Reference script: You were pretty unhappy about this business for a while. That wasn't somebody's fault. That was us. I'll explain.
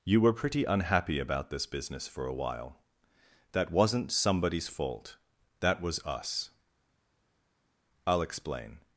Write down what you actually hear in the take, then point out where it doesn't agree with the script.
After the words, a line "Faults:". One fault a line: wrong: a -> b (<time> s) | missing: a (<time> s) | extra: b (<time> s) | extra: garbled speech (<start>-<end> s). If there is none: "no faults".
You were pretty unhappy about this business for a while. That wasn't somebody's fault. That was us. I'll explain.
Faults:
no faults